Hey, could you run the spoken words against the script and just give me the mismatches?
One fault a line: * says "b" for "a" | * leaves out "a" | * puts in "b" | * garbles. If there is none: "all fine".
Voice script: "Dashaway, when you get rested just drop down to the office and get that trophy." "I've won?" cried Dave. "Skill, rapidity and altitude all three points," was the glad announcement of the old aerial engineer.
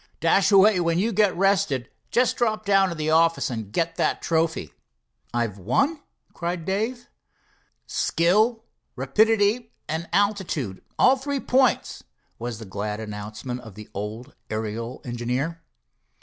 all fine